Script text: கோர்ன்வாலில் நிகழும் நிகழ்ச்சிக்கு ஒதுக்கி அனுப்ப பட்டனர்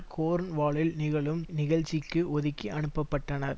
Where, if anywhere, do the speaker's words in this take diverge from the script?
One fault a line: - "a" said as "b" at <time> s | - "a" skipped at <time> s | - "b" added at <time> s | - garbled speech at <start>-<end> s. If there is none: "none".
none